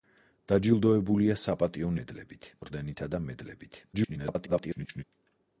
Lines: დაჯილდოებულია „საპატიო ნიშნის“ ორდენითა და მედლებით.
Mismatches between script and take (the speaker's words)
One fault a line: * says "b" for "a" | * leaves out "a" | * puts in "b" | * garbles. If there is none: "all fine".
* says "მედლებით" for "ნიშნის"
* garbles